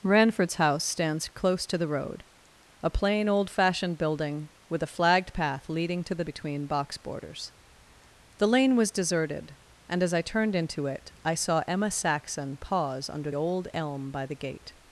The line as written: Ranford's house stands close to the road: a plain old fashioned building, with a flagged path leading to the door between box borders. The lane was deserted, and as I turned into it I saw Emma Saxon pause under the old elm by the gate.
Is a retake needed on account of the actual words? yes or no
yes